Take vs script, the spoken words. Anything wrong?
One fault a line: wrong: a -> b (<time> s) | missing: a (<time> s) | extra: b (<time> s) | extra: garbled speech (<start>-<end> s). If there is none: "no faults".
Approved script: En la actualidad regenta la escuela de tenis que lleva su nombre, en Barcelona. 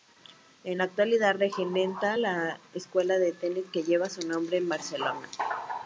no faults